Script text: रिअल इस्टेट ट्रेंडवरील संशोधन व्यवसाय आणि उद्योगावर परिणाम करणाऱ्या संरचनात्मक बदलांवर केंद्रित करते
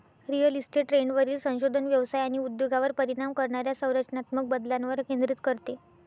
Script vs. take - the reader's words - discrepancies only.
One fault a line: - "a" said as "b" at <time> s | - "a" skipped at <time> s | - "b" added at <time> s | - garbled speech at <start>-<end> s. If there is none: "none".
none